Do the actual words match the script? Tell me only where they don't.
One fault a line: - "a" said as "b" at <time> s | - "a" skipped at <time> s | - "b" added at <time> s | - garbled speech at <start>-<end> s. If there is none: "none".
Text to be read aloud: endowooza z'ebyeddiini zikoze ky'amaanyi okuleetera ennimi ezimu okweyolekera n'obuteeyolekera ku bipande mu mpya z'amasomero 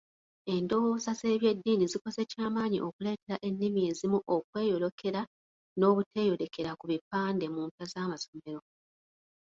none